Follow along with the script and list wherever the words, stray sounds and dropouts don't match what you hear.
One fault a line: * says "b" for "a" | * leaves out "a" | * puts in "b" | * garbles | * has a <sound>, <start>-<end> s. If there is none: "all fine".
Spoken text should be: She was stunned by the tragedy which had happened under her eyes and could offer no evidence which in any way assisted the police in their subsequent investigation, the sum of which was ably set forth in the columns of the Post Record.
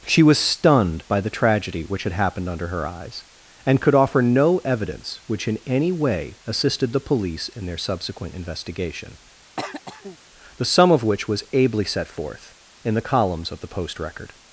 * has a throat clearing, 9.6-10.2 s